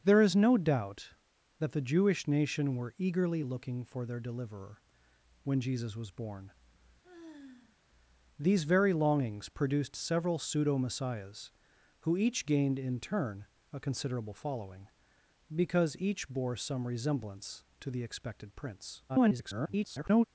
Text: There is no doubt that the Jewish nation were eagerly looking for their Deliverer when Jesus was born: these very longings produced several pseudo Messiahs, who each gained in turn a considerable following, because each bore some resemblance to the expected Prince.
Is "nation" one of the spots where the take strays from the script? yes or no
no